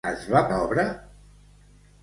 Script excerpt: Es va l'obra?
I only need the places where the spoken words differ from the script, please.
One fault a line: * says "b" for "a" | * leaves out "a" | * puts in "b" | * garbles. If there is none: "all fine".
all fine